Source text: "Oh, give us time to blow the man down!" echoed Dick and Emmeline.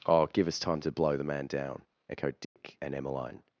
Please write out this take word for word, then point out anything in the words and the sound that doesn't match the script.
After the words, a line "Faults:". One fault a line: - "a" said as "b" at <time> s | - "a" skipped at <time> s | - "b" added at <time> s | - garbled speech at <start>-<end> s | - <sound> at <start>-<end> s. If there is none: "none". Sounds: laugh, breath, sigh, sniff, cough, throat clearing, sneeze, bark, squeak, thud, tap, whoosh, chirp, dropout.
"Oh, give us time to blow the man down!" echoed Dick and Emmeline.
Faults:
- dropout at 2.4-2.6 s